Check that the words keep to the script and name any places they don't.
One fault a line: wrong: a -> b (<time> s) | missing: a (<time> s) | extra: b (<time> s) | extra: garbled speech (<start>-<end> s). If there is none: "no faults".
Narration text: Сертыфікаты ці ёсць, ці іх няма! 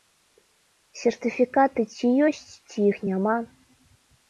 no faults